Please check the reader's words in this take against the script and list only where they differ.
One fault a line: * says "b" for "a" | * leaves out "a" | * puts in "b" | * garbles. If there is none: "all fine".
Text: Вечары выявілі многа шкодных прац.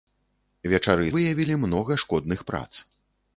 all fine